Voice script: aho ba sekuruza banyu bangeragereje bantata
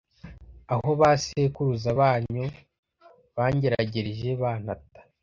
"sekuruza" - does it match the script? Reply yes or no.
yes